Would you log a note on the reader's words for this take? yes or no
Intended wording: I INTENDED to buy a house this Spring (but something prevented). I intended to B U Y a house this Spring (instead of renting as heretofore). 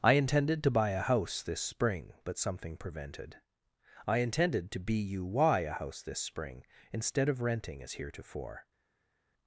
no